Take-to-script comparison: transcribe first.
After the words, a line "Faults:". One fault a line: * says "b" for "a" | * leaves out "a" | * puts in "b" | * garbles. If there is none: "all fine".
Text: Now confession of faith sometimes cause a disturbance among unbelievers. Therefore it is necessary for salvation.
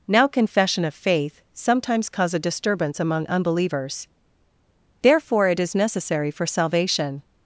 Now confession of faith sometimes cause a disturbance among unbelievers. Therefore it is necessary for salvation.
Faults:
all fine